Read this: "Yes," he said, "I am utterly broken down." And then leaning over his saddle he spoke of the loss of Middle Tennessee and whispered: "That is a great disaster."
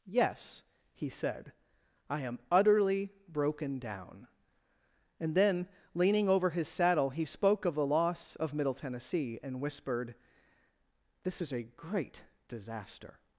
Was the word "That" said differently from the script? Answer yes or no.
yes